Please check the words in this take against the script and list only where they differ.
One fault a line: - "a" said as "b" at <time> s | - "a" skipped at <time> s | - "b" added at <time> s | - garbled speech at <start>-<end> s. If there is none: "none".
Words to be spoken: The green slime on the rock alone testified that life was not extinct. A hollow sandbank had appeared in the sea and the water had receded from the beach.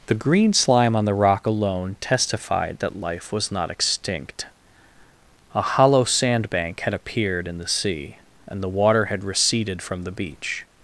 none